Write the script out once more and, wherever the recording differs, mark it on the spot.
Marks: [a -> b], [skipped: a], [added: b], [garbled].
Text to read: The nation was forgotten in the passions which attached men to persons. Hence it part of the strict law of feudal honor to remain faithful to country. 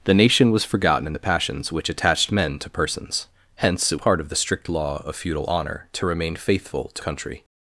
The nation was forgotten in the passions which attached men to persons. Hence it part of the strict law of feudal honor to remain faithful to country.